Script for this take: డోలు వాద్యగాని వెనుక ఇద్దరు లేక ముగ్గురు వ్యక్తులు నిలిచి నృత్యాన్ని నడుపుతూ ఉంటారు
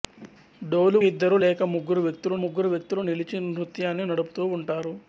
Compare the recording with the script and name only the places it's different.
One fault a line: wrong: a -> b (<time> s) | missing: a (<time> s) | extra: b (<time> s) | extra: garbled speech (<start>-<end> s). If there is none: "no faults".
wrong: వాద్యగాని వెనుక ఇద్దరు లేక -> ఇద్దరు లేక ముగ్గురు వ్యక్తులు (1.1 s)